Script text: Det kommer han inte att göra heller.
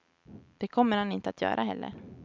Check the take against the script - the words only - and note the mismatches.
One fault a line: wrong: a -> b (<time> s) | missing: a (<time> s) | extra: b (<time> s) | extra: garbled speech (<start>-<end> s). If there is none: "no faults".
no faults